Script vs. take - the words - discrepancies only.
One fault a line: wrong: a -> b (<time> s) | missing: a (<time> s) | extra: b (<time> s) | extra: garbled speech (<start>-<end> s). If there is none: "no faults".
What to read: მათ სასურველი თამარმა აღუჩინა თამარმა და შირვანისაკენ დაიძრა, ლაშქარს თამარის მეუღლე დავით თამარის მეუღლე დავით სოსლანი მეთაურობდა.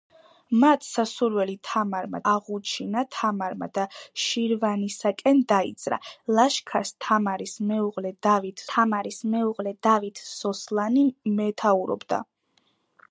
no faults